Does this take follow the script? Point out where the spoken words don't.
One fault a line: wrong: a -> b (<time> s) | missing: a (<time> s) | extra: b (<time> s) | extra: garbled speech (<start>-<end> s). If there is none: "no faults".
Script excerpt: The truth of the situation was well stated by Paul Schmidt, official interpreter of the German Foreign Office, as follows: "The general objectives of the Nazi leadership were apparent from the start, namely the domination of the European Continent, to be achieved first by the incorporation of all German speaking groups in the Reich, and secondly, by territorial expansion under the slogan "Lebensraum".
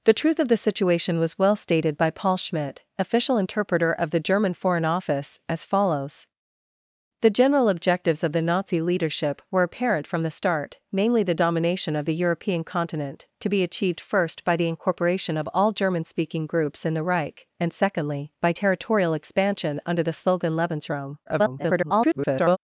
extra: garbled speech (21.3-22.6 s)